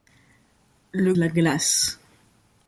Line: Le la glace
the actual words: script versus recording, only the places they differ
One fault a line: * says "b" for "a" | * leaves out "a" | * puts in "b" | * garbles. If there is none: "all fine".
all fine